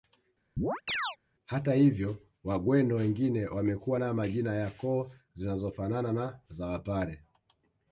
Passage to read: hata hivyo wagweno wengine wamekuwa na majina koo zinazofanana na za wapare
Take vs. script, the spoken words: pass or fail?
fail